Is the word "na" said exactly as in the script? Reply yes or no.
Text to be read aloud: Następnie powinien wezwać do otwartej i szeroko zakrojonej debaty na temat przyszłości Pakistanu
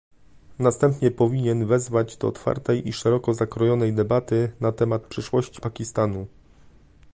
yes